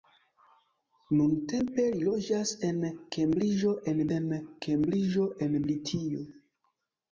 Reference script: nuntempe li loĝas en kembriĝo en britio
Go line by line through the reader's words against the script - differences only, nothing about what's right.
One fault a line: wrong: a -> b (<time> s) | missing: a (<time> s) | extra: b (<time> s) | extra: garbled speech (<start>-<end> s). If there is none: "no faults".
extra: en kembriĝo en (4.2 s)